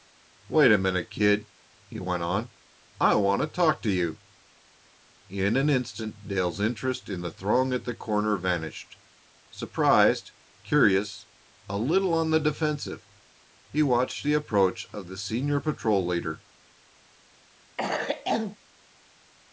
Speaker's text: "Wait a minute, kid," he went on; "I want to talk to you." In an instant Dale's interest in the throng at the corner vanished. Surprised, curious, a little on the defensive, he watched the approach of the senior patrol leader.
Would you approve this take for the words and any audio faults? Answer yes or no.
no